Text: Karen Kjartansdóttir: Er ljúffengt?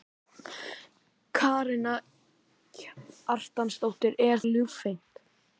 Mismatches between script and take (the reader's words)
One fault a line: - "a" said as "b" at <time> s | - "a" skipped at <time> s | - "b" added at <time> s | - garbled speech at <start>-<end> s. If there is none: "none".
none